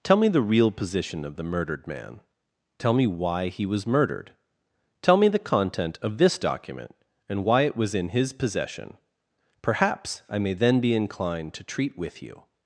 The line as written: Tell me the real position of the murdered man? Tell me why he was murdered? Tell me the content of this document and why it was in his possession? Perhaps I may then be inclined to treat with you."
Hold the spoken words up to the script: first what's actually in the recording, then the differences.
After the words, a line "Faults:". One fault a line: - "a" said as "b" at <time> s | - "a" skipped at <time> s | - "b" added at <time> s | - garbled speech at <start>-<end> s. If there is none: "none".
Tell me the real position of the murdered man? Tell me why he was murdered? Tell me the content of this document and why it was in his possession? Perhaps I may then be inclined to treat with you."
Faults:
none